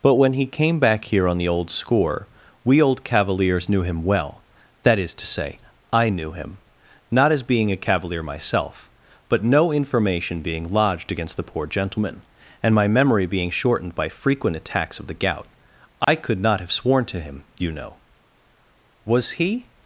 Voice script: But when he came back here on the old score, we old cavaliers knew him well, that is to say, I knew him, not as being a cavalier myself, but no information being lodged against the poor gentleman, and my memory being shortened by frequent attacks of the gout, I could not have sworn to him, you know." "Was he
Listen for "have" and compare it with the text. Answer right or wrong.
right